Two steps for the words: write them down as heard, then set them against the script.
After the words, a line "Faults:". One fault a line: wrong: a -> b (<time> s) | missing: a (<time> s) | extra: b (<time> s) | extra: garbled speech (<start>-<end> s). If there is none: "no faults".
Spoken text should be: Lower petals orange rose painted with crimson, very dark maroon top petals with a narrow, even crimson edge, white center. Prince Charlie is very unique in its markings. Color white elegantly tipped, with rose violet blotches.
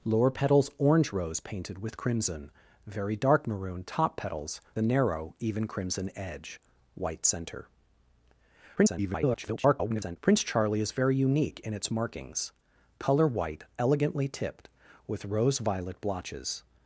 Lower petals orange rose painted with crimson, very dark maroon top petals a narrow, even crimson edge, white center. [garbled] Prince Charlie is very unique in its markings. Color white elegantly tipped, with rose violet blotches.
Faults:
missing: with (4.6 s)
extra: garbled speech (8.8-10.2 s)